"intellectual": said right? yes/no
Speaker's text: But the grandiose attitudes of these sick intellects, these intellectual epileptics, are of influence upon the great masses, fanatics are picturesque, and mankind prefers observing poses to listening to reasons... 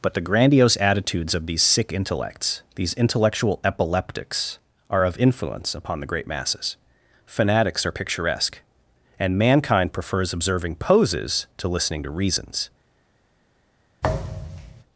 yes